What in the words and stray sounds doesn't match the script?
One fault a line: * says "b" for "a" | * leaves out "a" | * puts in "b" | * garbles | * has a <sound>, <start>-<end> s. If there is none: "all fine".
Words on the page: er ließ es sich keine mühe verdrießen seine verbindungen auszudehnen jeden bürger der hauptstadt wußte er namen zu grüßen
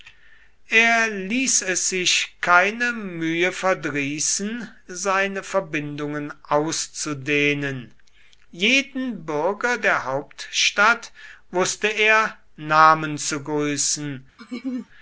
* has a laugh, 14.4-14.9 s